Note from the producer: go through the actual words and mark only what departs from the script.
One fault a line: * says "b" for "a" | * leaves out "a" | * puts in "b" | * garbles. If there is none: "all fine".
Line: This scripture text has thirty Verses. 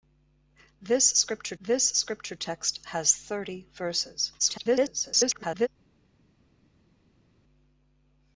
* puts in "this scripture"
* garbles